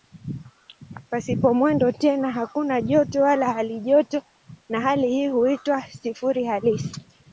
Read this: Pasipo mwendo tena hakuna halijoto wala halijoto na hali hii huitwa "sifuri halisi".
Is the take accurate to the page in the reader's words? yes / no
no